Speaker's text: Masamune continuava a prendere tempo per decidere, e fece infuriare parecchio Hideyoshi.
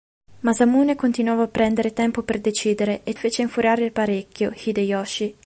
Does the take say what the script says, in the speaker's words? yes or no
yes